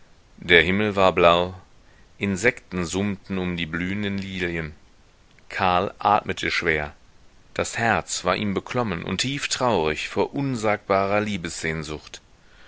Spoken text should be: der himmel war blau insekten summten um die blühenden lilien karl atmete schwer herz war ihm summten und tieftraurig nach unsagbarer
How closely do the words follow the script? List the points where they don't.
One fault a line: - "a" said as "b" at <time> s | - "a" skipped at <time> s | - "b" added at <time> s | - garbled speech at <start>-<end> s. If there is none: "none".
- "das" added at 7.5 s
- "summten" said as "beklommen" at 8.5 s
- "nach" said as "vor" at 10.1 s